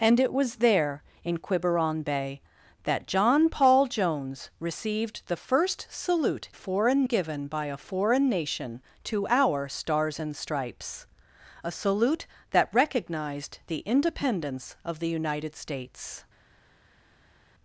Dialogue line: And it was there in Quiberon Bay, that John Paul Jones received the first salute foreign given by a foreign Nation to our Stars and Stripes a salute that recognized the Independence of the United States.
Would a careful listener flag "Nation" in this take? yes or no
no